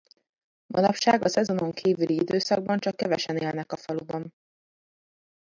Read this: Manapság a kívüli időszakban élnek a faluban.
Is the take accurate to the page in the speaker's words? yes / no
no